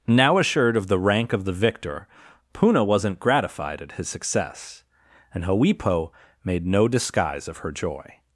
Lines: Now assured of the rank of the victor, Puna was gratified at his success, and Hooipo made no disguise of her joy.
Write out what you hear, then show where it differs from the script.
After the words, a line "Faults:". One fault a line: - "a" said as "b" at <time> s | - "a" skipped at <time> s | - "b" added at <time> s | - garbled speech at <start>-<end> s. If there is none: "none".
Now assured of the rank of the victor, Puna wasn't gratified at his success, and Hooipo made no disguise of her joy.
Faults:
- "was" said as "wasn't" at 2.8 s